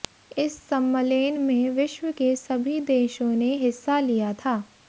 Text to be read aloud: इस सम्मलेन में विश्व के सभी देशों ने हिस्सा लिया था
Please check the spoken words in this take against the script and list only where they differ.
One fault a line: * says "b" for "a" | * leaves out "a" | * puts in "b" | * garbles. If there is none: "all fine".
all fine